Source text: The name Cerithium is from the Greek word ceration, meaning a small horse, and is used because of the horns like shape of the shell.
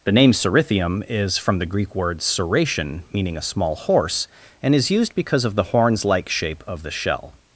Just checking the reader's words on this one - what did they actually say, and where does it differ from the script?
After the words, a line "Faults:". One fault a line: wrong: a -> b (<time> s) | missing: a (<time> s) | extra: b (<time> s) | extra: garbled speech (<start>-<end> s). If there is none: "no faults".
The name Cerithium is from the Greek word ceration, meaning a small horse, and is used because of the horns like shape of the shell.
Faults:
no faults